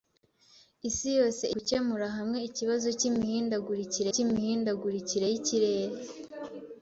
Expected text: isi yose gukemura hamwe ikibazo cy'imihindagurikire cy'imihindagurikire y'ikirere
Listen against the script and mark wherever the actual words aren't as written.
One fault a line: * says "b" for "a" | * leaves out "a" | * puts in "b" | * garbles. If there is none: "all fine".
all fine